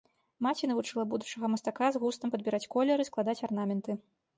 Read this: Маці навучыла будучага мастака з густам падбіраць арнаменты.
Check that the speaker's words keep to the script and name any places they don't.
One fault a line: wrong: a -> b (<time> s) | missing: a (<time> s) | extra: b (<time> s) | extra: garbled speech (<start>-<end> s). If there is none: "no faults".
extra: колеры складаць (2.8 s)